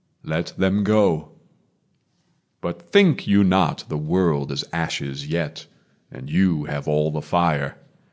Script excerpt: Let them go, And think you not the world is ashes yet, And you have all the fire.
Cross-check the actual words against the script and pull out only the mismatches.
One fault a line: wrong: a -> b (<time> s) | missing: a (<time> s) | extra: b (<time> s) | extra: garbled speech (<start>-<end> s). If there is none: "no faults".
wrong: And -> But (2.6 s)